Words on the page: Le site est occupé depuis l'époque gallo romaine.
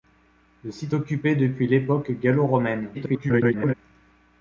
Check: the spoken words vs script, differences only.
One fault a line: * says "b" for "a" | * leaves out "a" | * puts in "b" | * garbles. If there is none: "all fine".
* leaves out "est"
* garbles